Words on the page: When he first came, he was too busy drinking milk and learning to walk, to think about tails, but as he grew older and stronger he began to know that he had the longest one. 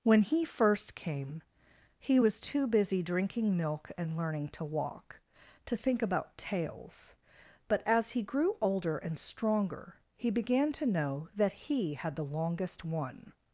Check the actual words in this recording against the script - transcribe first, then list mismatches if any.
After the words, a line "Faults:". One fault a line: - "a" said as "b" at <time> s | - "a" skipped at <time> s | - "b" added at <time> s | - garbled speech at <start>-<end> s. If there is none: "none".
When he first came, he was too busy drinking milk and learning to walk, to think about tails, but as he grew older and stronger he began to know that he had the longest one.
Faults:
none